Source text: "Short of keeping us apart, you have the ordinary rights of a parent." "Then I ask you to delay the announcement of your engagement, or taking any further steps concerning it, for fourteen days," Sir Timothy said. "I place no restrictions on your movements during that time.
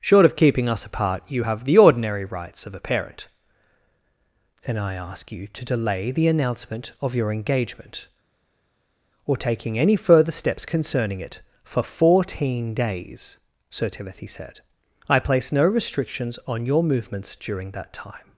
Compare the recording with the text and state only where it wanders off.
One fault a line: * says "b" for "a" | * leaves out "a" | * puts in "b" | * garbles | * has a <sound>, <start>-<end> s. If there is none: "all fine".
all fine